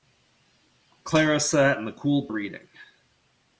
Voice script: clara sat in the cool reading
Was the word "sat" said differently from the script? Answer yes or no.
no